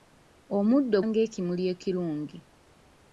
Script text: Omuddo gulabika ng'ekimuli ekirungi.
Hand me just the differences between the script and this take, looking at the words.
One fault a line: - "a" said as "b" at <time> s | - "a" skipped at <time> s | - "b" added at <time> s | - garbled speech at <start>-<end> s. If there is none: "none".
- "gulabika" skipped at 1.0 s